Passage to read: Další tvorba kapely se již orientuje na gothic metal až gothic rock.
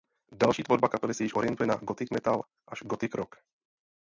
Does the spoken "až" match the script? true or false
true